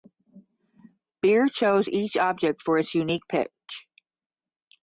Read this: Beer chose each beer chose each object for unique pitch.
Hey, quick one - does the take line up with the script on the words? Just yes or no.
no